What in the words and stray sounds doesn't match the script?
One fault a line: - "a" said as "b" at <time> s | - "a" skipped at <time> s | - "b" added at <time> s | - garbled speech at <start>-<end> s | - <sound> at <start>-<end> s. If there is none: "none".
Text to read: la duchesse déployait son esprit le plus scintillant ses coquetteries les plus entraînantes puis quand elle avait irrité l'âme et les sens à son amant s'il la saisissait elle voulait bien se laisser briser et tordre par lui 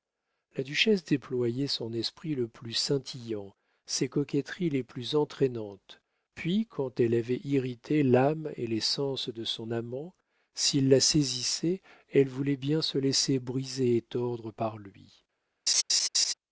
- "à" said as "de" at 9.3 s
- laugh at 15.7-16.3 s